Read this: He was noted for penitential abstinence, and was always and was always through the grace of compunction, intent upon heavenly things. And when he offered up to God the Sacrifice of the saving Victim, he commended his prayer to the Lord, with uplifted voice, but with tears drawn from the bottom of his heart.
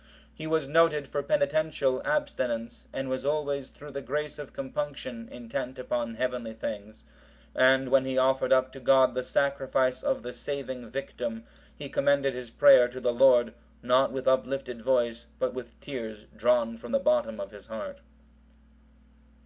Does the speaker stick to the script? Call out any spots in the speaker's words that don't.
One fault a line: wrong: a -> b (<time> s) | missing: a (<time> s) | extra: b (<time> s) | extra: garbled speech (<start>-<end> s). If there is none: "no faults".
missing: and was always (3.7 s)
extra: not (13.8 s)